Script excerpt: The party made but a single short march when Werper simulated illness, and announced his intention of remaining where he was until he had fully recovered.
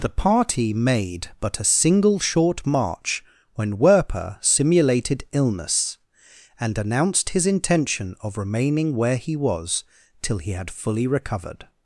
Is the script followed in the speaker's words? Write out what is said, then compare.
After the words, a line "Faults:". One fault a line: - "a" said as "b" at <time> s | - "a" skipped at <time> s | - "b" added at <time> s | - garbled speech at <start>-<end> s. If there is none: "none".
The party made but a single short march when Werper simulated illness, and announced his intention of remaining where he was till he had fully recovered.
Faults:
- "until" said as "till" at 10.2 s